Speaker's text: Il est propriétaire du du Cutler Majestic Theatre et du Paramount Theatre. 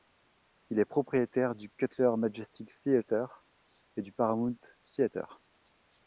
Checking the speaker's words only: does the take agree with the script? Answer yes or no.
no